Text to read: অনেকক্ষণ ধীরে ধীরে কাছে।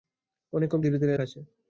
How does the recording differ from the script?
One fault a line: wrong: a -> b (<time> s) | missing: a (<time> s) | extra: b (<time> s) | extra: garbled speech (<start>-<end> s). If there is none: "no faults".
no faults